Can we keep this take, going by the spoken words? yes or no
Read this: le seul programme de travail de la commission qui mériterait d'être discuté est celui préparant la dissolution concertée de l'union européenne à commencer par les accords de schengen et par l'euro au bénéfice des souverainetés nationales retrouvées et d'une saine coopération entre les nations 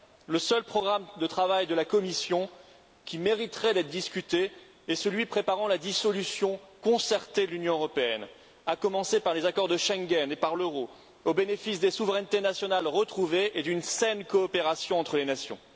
yes